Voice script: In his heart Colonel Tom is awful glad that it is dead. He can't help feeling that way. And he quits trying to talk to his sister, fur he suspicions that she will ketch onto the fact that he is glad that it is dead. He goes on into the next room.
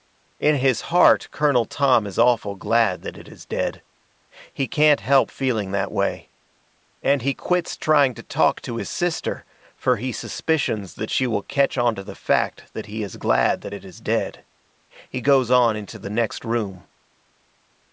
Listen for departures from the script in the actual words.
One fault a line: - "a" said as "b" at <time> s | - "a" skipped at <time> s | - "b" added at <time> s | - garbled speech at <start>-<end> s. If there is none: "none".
none